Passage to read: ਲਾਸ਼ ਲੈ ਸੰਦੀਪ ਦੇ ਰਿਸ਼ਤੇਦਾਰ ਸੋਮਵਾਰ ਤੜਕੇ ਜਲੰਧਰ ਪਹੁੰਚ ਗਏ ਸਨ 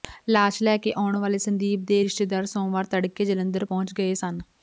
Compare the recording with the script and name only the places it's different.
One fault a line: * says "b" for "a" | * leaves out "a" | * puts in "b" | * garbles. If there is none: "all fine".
* puts in "ਕੇ ਆਉਣ ਵਾਲੇ"